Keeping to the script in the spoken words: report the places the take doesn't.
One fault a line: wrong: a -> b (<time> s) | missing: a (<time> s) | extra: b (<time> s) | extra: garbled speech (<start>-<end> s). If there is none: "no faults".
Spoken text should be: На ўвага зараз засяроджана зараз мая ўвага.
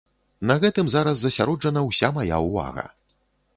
wrong: ўвага -> гэтым (0.6 s)
wrong: зараз -> ўся (1.9 s)